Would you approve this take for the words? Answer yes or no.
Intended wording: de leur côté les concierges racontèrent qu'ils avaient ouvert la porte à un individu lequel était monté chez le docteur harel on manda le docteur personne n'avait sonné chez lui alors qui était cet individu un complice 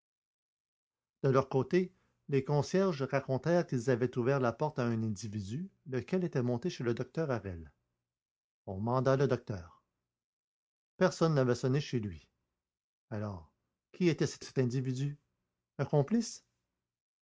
no